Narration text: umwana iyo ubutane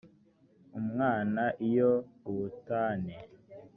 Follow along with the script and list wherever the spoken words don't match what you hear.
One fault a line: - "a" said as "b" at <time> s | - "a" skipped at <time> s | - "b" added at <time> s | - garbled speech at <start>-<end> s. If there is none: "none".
none